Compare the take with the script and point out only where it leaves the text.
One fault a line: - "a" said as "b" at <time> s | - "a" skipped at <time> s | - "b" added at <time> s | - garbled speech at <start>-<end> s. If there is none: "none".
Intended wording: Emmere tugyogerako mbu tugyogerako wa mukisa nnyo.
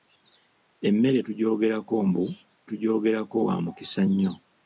none